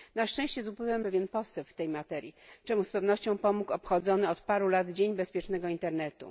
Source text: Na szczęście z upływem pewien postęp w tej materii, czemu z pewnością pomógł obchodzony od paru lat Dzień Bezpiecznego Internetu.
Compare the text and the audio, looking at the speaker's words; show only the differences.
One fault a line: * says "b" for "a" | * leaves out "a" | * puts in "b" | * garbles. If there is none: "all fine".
all fine